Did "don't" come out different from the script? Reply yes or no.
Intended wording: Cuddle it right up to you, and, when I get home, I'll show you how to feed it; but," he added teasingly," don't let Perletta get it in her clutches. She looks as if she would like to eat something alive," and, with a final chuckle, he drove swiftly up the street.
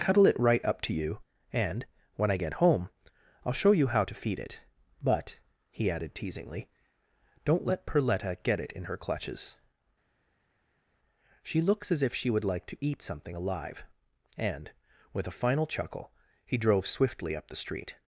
no